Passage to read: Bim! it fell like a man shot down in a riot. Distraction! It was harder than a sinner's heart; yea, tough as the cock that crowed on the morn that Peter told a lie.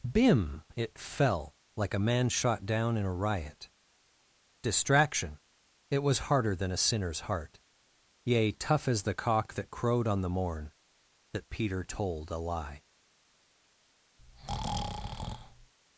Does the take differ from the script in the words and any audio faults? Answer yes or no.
yes